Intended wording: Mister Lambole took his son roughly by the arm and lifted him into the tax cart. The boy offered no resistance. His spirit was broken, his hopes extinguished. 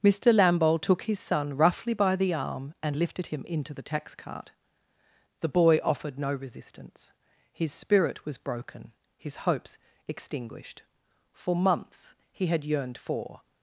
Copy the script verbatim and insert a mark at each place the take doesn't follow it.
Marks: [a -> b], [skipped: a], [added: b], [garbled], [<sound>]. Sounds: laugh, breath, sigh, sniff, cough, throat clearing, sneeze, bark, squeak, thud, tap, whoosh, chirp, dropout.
Mister Lambole took his son roughly by the arm and lifted him into the tax cart. The boy offered no resistance. His spirit was broken, his hopes extinguished. [added: For months he had yearned for]